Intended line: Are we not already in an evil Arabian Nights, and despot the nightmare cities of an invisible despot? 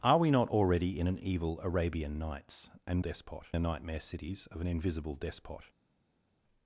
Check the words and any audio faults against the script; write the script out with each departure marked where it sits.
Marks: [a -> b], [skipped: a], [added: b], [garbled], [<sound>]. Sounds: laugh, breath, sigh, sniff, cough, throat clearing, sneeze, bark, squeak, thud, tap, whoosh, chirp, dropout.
Are we not already in an evil Arabian Nights, and despot the nightmare cities of an invisible despot?